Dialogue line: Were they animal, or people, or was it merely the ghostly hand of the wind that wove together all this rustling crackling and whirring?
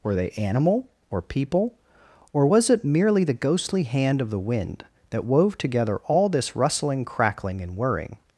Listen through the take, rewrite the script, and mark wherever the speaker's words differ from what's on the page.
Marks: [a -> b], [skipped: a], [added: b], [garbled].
Were they animal, or people, or was it merely the ghostly hand of the wind that wove together all this rustling crackling and whirring?